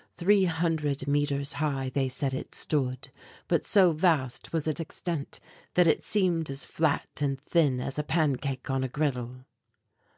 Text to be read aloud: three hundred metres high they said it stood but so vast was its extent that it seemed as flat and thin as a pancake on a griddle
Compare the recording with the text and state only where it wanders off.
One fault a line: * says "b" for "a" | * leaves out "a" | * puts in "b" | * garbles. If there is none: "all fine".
all fine